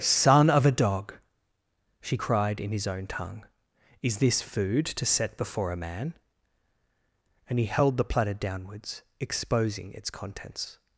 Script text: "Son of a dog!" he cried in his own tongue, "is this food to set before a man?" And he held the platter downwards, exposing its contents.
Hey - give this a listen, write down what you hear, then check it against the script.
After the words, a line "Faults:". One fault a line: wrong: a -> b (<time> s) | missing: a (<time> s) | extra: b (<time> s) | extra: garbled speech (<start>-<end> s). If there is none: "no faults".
"Son of a dog!" she cried in his own tongue, "is this food to set before a man?" And he held the platter downwards, exposing its contents.
Faults:
wrong: he -> she (2.0 s)